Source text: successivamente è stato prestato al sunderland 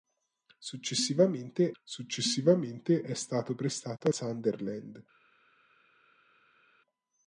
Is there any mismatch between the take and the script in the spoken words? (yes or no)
yes